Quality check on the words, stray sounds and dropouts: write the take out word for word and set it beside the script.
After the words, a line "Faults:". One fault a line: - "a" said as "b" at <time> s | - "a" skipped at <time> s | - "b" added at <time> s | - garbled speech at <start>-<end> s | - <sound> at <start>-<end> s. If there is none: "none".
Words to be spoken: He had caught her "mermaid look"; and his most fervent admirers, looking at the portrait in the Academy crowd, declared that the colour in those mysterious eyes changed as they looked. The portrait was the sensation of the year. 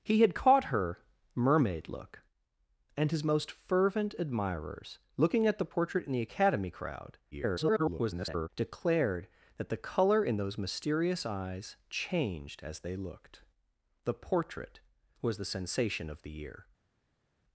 He had caught her "mermaid look"; and his most fervent admirers, looking at the portrait in the Academy crowd, [garbled] declared that the colour in those mysterious eyes changed as they looked. The portrait was the sensation of the year.
Faults:
- garbled speech at 7.3-8.5 s